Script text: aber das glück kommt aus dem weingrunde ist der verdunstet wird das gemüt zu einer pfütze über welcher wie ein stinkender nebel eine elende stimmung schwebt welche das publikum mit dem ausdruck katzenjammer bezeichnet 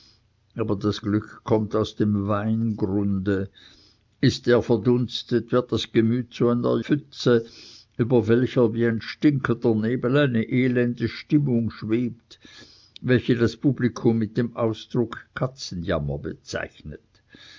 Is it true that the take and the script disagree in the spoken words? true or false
false